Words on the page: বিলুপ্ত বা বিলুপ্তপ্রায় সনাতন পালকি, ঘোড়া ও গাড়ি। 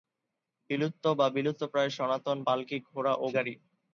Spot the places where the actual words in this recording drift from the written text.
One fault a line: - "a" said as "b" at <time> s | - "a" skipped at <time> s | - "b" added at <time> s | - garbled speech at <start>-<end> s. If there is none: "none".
none